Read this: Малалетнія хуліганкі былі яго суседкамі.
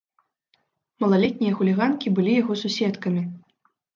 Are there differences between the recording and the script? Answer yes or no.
no